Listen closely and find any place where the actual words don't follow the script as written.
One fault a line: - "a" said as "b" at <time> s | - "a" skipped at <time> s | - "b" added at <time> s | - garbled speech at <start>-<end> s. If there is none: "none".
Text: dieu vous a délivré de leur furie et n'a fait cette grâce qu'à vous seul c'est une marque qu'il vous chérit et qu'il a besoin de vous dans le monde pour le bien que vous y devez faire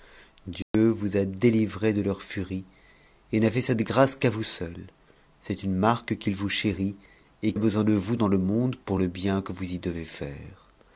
- "qu'il" skipped at 7.5 s